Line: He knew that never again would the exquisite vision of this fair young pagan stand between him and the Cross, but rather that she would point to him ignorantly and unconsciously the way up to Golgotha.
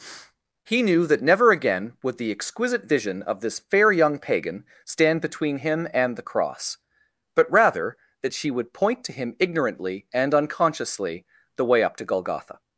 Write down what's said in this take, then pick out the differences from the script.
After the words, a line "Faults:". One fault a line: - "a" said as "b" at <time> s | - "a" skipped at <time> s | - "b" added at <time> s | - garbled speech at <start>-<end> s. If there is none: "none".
He knew that never again would the exquisite vision of this fair young pagan stand between him and the Cross, but rather that she would point to him ignorantly and unconsciously the way up to Golgotha.
Faults:
none